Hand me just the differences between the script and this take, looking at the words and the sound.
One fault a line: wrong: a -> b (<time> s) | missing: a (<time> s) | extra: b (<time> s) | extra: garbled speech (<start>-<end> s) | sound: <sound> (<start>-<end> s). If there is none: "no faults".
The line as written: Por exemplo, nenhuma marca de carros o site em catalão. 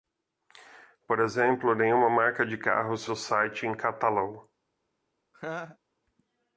sound: laugh (5.3-5.8 s)